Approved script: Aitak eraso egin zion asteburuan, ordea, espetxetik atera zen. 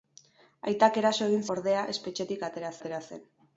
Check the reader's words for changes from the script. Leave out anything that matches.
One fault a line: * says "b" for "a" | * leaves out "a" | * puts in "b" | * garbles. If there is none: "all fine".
* leaves out "zion asteburuan"
* puts in "atera"